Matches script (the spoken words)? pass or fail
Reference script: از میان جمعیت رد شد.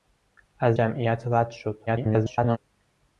fail